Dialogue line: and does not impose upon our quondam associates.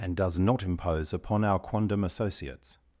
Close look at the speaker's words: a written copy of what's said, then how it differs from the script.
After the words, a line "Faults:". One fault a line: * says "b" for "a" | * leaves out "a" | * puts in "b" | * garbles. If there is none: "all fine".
and does not impose upon our quondam associates.
Faults:
all fine